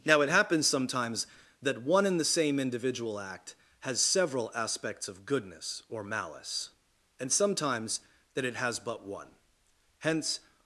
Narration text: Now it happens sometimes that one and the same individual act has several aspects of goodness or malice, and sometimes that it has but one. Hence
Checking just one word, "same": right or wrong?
right